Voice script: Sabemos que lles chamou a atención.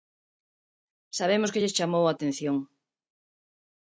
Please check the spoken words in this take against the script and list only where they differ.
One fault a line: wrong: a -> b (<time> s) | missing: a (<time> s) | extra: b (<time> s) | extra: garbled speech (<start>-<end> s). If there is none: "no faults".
no faults